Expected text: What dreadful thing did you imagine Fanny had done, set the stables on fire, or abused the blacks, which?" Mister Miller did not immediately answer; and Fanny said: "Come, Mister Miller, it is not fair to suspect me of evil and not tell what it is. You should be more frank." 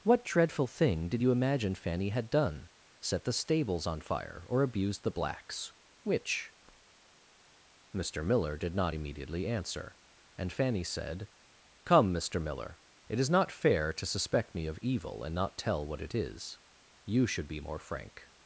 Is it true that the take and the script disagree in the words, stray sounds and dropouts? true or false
false